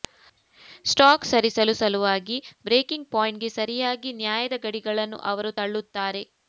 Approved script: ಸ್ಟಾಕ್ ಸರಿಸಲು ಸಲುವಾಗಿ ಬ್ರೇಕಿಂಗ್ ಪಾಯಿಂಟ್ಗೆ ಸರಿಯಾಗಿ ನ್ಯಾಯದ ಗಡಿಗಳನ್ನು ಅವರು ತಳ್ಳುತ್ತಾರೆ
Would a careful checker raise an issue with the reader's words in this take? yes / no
no